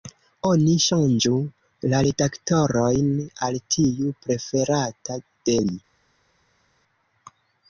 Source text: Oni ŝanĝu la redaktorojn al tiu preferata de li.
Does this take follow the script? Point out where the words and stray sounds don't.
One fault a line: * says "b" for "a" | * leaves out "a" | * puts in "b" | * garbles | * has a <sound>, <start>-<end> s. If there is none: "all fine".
all fine